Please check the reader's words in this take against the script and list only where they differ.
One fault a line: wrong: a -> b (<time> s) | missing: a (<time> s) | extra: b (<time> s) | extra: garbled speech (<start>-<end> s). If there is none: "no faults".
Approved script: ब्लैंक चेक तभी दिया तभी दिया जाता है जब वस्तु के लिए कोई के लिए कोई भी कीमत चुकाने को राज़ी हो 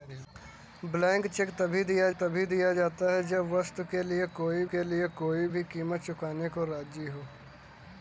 no faults